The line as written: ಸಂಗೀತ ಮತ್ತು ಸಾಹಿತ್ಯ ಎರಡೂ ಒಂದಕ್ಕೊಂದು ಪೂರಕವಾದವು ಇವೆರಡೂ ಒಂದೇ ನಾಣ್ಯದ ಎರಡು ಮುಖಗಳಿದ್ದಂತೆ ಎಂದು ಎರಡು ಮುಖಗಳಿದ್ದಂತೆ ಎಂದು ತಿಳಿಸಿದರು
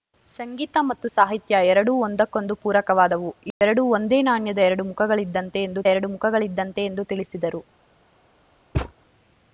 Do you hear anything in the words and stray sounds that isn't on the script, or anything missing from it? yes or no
yes